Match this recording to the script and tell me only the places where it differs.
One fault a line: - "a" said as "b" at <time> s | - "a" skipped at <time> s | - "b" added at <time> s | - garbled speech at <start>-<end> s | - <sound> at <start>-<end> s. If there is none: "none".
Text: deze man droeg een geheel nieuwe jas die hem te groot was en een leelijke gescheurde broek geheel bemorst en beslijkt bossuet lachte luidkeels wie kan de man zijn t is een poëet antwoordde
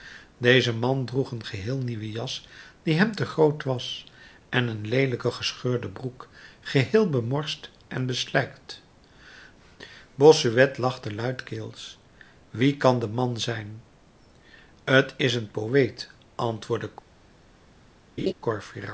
- laugh at 18.2-18.3 s